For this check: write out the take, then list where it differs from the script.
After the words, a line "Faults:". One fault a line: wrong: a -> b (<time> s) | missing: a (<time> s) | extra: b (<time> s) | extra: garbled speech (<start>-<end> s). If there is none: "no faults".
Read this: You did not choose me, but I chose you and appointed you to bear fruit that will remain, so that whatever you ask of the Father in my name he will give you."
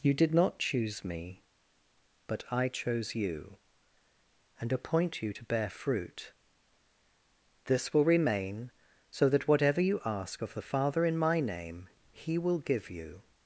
You did not choose me, but I chose you and appoint you to bear fruit this will remain, so that whatever you ask of the Father in my name he will give you."
Faults:
wrong: appointed -> appoint (4.7 s)
wrong: that -> this (7.7 s)